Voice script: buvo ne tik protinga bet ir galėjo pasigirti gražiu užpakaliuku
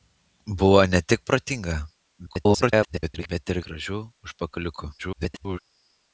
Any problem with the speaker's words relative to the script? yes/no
yes